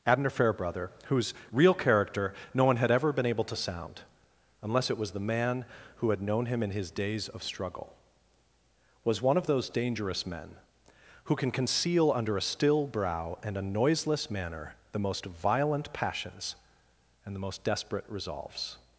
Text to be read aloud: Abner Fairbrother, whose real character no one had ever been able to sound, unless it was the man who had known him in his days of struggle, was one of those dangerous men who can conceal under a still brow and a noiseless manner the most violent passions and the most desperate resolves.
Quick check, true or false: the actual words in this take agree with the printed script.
true